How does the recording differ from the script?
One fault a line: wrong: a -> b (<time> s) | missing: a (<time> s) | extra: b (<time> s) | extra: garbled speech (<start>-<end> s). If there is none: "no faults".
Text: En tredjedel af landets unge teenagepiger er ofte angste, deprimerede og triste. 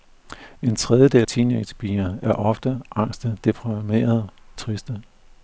missing: af landets unge (1.3 s)
missing: og (4.3 s)